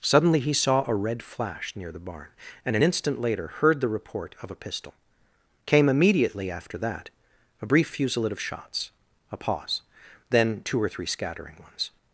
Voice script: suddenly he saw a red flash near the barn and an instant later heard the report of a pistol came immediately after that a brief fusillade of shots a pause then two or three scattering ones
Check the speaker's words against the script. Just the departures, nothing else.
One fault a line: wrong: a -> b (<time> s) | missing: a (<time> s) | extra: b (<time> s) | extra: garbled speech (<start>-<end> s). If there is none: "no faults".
no faults